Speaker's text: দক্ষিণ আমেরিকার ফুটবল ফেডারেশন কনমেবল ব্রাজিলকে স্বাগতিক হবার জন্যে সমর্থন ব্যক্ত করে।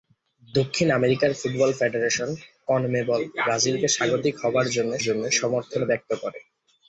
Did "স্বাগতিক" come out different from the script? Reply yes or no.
no